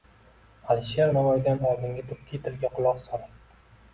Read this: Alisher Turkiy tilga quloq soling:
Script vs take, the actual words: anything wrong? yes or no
yes